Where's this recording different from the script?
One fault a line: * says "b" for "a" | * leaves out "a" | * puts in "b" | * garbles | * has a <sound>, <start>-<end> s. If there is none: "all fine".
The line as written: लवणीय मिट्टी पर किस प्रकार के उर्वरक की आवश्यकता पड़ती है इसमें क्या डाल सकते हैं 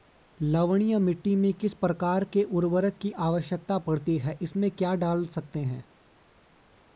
* says "में" for "पर"